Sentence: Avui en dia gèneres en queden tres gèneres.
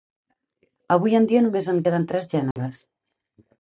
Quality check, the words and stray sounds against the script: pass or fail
fail